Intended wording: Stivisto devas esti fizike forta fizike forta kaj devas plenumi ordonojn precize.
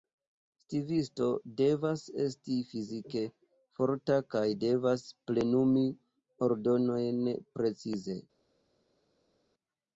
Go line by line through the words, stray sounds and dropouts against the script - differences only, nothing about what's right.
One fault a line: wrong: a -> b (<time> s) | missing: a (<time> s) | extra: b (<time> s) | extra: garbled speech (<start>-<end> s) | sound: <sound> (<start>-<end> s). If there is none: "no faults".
missing: fizike forta (4.2 s)